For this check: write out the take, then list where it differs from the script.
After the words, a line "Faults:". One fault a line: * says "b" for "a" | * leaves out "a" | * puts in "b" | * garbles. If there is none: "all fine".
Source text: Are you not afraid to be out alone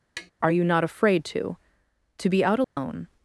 Are you not afraid to to be out alone
Faults:
* puts in "to"